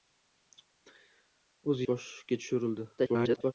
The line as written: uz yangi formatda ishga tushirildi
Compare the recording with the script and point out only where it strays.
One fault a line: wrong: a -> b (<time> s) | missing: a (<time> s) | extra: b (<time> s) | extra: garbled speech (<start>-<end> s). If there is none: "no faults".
missing: yangi formatda (1.8 s)
extra: garbled speech (3.0-3.5 s)